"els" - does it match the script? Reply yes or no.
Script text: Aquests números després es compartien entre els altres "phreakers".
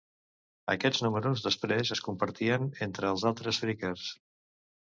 yes